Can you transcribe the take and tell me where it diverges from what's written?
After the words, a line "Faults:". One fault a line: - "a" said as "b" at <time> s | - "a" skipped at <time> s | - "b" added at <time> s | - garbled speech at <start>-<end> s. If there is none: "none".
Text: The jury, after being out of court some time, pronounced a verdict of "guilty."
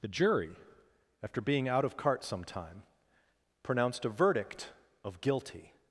The jury, after being out of cart some time, pronounced a verdict of "guilty."
Faults:
- "court" said as "cart" at 1.9 s